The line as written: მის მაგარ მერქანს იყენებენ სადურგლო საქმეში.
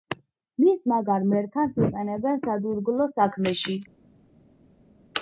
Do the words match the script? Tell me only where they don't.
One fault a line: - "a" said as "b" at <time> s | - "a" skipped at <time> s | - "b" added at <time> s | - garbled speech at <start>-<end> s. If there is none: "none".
none